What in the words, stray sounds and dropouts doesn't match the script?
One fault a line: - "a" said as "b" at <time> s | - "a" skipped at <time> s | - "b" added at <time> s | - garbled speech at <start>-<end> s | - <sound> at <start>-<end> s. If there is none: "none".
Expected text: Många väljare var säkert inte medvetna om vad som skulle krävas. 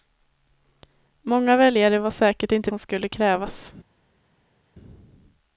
- "medvetna om vad" skipped at 2.7 s